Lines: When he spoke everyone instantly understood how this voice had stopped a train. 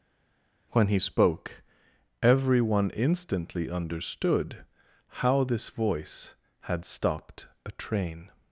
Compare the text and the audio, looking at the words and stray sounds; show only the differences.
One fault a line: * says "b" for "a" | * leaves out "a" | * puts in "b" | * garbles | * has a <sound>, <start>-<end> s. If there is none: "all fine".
all fine